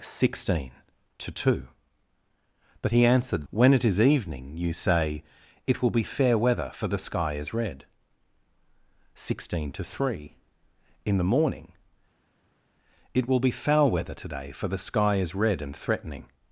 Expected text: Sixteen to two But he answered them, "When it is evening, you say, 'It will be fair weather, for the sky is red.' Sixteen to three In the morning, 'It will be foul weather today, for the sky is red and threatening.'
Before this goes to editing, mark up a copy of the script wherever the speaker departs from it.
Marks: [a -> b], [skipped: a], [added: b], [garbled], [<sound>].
Sixteen to two But he answered [skipped: them,] "When it is evening, you say, 'It will be fair weather, for the sky is red.' Sixteen to three In the morning, 'It will be foul weather today, for the sky is red and threatening.'